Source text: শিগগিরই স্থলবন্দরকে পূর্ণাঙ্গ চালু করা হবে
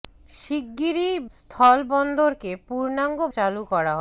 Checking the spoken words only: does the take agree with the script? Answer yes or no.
yes